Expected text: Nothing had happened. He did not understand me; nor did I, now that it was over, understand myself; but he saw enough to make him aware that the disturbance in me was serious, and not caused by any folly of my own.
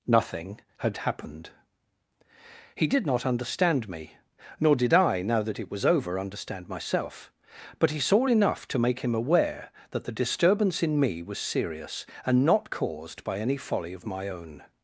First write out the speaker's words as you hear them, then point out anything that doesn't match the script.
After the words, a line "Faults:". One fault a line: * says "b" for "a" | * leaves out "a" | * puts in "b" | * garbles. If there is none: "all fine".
Nothing had happened. He did not understand me; nor did I, now that it was over, understand myself; but he saw enough to make him aware that the disturbance in me was serious, and not caused by any folly of my own.
Faults:
all fine